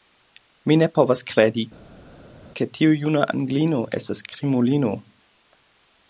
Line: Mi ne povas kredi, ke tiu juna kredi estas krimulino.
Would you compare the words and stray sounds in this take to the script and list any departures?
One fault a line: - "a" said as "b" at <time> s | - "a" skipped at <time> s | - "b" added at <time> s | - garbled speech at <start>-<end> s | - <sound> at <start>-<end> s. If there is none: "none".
- "kredi" said as "anglino" at 3.4 s